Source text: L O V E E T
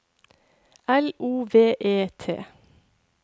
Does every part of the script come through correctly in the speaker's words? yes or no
no